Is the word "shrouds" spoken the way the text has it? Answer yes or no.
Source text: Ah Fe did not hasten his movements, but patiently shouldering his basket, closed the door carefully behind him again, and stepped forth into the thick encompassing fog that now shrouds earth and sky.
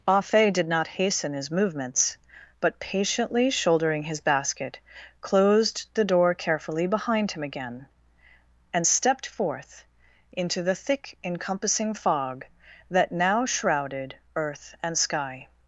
no